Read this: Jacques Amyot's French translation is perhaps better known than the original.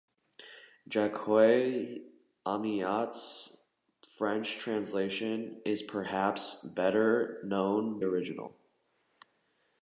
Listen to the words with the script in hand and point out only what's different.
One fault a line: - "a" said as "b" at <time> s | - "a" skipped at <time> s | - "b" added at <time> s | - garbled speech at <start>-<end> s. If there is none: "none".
- "than the" skipped at 8.0 s